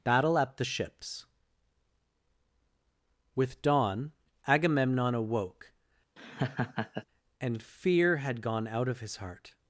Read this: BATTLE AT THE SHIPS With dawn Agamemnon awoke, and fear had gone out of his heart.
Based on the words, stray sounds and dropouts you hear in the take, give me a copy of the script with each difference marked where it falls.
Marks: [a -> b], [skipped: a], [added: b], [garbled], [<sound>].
BATTLE AT THE SHIPS With dawn Agamemnon awoke, [laugh] and fear had gone out of his heart.